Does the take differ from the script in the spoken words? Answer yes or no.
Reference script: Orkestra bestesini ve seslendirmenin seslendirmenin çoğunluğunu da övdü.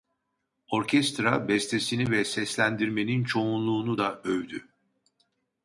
yes